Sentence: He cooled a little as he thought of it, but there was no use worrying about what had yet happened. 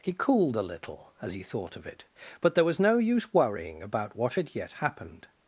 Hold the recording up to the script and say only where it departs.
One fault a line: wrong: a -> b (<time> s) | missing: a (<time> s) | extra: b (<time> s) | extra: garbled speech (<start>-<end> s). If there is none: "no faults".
no faults